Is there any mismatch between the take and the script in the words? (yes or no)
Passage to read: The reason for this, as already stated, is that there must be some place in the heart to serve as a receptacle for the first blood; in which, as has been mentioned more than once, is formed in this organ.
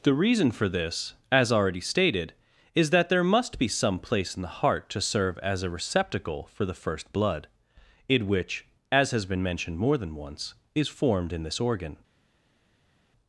no